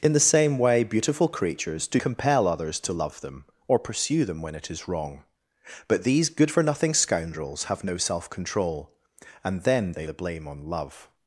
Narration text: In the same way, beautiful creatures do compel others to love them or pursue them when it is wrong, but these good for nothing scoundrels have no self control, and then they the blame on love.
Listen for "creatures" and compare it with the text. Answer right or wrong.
right